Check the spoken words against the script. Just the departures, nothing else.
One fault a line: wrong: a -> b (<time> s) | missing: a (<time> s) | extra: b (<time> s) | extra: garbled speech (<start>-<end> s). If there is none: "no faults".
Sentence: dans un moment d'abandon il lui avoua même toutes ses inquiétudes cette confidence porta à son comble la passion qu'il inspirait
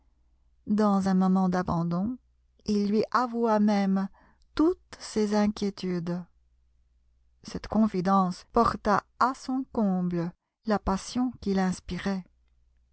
no faults